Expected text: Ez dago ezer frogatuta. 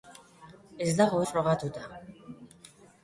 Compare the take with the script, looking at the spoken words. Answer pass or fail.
fail